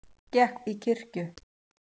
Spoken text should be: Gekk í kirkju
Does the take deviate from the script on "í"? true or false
false